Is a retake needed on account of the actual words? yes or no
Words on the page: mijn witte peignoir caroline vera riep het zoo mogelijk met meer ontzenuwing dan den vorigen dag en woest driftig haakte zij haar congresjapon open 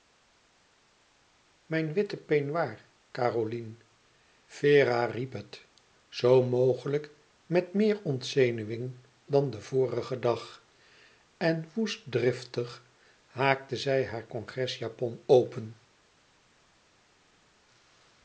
no